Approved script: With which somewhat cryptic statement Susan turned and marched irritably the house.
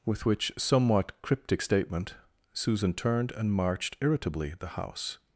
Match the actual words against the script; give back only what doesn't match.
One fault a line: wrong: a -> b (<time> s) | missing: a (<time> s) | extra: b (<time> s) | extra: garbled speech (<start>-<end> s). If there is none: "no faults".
no faults